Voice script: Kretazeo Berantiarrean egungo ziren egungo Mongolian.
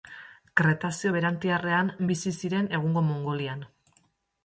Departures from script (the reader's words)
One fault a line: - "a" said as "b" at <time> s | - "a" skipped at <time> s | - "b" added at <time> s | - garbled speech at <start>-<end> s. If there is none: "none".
- "egungo" said as "bizi" at 2.1 s